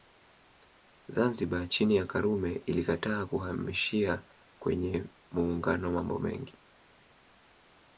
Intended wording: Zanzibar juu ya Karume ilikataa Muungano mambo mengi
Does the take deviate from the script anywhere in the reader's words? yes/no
yes